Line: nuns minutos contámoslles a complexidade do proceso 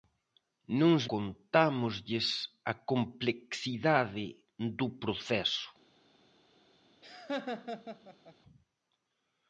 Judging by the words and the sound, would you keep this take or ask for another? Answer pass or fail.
fail